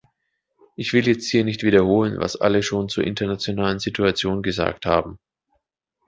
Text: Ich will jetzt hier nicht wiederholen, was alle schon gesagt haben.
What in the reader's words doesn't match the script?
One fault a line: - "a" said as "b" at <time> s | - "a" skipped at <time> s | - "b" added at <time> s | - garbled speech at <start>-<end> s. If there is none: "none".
- "zur internationalen Situation" added at 2.9 s